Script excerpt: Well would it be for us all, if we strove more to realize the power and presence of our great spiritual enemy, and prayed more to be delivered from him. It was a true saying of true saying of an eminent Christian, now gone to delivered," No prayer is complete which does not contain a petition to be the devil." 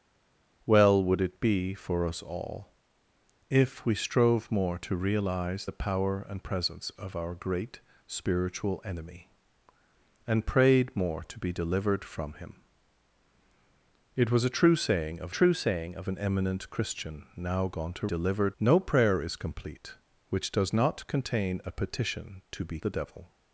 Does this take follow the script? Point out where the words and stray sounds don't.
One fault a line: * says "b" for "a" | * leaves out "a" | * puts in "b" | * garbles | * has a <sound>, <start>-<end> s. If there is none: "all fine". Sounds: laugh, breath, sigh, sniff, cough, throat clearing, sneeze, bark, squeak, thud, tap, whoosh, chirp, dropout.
all fine